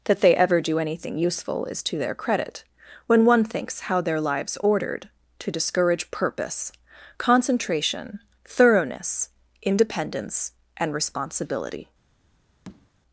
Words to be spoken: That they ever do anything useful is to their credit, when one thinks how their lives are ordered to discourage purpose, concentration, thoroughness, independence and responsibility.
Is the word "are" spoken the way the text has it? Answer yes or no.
no